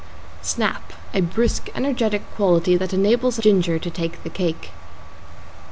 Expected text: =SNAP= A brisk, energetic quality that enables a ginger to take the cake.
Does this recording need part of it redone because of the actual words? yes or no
no